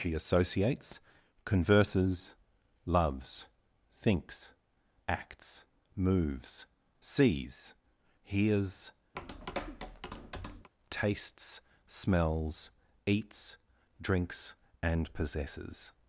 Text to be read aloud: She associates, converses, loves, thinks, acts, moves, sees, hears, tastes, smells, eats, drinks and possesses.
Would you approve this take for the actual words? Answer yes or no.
yes